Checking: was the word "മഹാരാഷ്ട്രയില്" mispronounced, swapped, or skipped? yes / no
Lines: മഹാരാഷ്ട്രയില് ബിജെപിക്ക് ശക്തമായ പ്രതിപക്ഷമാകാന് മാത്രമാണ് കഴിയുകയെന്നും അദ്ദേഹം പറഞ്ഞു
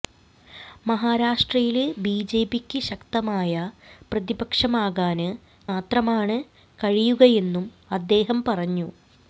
no